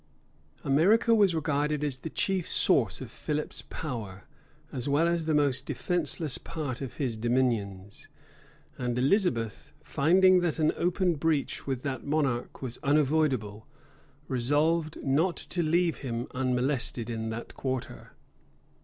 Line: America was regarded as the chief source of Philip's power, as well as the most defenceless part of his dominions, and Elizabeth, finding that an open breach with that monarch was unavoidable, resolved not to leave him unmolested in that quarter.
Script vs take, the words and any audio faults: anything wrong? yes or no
no